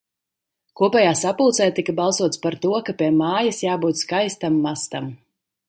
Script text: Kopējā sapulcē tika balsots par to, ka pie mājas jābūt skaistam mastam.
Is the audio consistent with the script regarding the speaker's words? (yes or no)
yes